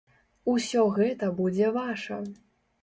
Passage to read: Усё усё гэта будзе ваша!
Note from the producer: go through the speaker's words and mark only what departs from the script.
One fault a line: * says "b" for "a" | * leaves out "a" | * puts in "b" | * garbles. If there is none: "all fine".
* leaves out "усё"